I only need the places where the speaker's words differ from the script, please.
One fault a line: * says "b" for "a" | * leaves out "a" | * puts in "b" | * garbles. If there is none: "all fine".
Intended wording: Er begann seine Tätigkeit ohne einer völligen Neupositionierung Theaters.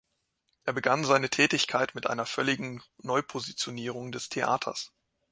* says "mit" for "ohne"
* puts in "des"